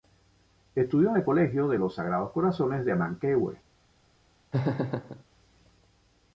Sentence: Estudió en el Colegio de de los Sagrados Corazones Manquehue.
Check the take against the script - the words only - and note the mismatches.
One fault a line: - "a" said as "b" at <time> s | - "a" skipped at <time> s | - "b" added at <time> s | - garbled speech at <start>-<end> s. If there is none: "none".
- "de" skipped at 1.8 s
- "de" added at 2.8 s